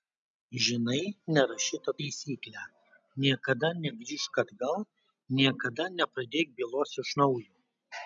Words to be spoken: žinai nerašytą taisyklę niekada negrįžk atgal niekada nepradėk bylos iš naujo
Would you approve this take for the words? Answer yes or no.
yes